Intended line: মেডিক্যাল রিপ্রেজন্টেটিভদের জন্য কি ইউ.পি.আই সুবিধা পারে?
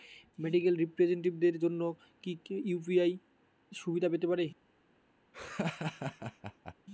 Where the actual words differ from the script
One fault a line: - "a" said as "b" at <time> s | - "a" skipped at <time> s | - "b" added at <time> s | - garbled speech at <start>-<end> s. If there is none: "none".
- "পেতে" added at 4.1 s